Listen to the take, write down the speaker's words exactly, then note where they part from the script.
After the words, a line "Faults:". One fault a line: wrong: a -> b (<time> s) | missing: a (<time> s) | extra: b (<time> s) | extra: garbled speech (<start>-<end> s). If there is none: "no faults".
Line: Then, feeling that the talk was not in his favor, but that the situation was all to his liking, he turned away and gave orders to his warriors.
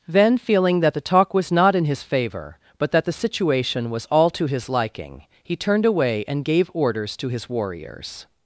Then, feeling that the talk was not in his favor, but that the situation was all to his liking, he turned away and gave orders to his warriors.
Faults:
no faults